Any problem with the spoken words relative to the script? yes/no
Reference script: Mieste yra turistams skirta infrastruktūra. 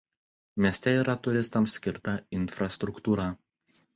no